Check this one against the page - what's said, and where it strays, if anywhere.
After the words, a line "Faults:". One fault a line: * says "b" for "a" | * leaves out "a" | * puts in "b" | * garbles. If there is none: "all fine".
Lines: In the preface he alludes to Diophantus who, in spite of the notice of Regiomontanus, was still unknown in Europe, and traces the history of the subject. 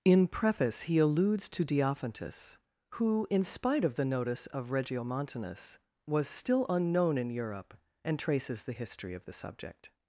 In preface he alludes to Diophantus who, in spite of the notice of Regiomontanus, was still unknown in Europe, and traces the history of the subject.
Faults:
* leaves out "the"